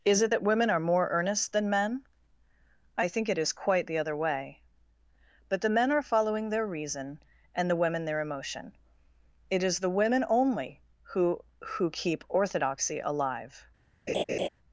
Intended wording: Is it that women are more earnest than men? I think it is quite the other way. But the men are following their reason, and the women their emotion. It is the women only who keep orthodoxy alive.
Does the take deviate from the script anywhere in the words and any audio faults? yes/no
yes